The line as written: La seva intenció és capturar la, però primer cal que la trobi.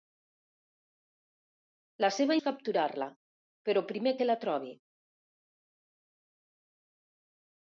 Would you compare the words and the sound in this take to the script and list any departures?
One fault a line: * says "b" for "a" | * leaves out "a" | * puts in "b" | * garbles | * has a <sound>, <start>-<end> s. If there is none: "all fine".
* leaves out "intenció"
* leaves out "cal"